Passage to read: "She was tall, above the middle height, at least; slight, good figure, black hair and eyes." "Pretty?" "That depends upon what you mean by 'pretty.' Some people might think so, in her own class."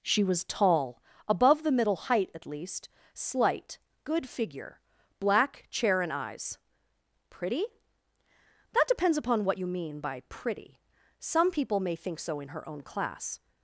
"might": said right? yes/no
no